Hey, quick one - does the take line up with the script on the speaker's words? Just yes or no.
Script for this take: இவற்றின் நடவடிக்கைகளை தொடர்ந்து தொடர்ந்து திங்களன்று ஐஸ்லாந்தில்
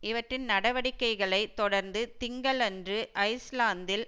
no